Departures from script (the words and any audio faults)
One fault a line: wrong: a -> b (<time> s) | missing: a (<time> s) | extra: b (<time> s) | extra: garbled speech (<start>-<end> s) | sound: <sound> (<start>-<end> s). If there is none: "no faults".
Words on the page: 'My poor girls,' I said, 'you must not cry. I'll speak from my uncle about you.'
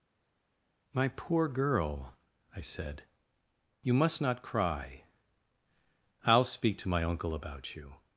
wrong: girls -> girl (1.5 s)
wrong: from -> to (6.8 s)